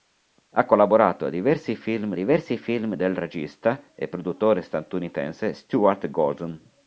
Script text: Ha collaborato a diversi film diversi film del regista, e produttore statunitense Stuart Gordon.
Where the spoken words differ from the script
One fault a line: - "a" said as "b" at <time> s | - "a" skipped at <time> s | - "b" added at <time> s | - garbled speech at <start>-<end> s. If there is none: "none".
none